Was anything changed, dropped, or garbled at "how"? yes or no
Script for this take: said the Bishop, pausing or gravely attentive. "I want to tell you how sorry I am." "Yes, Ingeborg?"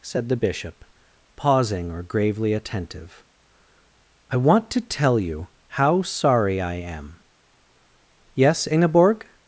no